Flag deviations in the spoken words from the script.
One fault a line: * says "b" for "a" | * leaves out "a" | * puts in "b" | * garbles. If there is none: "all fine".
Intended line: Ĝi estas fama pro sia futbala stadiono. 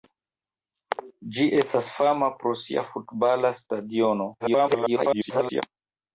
* garbles